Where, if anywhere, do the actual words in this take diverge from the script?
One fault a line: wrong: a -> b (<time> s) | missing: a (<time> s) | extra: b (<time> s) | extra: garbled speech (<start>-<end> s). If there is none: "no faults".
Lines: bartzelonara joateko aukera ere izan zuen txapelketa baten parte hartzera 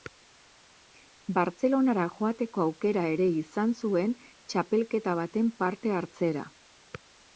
no faults